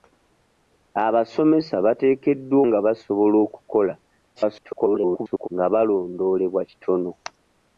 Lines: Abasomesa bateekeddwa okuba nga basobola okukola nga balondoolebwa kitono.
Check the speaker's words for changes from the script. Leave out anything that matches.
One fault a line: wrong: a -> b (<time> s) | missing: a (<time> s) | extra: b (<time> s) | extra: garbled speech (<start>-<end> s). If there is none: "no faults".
missing: okuba (2.6 s)
extra: garbled speech (4.4-5.5 s)